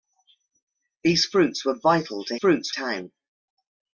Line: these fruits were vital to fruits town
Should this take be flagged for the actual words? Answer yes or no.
no